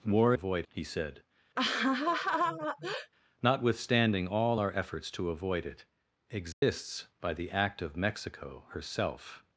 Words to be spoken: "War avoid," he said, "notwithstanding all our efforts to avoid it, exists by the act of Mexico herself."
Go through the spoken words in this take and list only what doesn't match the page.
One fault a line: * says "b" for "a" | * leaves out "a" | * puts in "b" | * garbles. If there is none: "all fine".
all fine